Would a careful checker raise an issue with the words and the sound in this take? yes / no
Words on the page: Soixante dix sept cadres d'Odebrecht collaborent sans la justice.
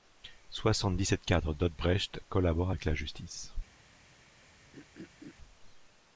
yes